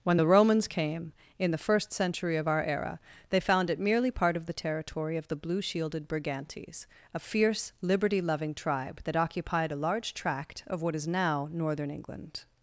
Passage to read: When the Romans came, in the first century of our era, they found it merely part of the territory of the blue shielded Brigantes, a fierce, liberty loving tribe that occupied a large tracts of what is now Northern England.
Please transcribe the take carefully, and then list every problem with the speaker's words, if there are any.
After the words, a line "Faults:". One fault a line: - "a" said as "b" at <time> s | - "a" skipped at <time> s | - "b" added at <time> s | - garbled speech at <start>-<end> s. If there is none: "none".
When the Romans came, in the first century of our era, they found it merely part of the territory of the blue shielded Brigantes, a fierce, liberty loving tribe that occupied a large tract of what is now Northern England.
Faults:
- "tracts" said as "tract" at 10.1 s